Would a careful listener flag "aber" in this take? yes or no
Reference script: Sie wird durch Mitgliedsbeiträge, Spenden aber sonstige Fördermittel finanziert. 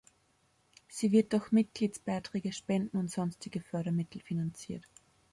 yes